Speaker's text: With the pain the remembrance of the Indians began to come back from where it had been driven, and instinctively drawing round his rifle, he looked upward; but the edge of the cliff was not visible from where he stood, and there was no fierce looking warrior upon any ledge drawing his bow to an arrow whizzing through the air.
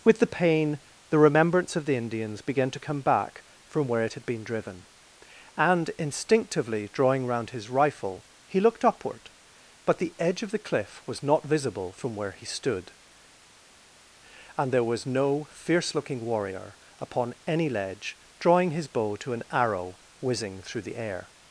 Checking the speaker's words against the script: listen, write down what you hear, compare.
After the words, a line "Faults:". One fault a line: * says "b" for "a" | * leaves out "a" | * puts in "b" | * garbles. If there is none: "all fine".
With the pain the remembrance of the Indians began to come back from where it had been driven, and instinctively drawing round his rifle, he looked upward; but the edge of the cliff was not visible from where he stood, and there was no fierce looking warrior upon any ledge drawing his bow to an arrow whizzing through the air.
Faults:
all fine